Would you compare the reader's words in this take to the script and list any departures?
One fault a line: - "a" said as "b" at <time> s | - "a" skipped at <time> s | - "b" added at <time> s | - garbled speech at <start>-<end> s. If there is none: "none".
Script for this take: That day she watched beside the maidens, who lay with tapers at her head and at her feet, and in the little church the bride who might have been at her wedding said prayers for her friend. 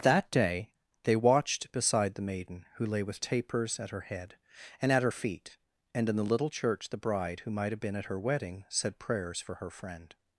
- "she" said as "they" at 1.0 s
- "maidens" said as "maiden" at 2.2 s